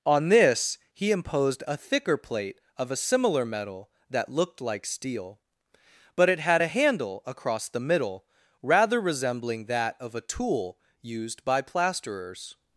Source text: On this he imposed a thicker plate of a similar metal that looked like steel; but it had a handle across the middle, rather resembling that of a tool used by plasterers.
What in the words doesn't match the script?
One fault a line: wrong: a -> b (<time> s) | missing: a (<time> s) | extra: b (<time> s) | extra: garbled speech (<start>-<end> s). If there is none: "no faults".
no faults